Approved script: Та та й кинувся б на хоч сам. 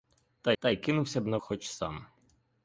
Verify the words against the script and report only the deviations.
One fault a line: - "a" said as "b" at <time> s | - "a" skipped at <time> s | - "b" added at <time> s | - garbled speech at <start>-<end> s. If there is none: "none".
none